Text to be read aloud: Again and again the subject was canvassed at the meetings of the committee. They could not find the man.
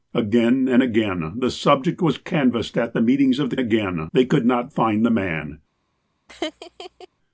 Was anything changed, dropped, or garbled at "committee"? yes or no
yes